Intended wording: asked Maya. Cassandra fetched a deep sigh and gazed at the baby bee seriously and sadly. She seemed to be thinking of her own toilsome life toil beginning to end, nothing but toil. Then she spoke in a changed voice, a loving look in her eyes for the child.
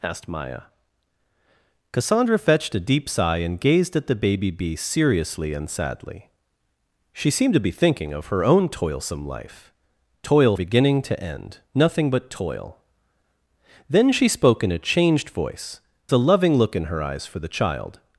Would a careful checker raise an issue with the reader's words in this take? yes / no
no